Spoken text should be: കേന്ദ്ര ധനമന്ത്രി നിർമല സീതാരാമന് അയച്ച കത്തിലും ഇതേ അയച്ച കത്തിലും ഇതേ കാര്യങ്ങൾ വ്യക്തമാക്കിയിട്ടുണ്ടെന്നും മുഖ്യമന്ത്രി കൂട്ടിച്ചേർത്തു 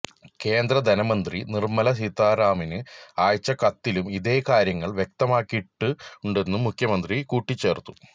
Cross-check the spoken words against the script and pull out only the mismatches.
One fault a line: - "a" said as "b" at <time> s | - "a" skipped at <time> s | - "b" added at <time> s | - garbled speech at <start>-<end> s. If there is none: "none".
- "അയച്ച കത്തിലും ഇതേ" skipped at 4.4 s